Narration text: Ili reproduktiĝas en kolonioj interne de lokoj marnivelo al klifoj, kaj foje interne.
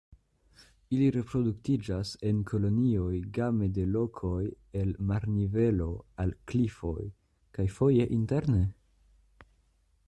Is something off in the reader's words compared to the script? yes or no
yes